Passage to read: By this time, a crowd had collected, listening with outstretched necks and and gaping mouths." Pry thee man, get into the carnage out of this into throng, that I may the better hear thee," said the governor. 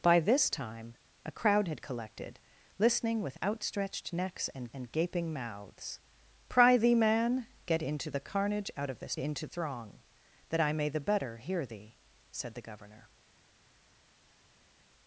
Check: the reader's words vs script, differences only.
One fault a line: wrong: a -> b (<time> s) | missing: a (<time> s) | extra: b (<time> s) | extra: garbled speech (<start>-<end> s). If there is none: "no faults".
no faults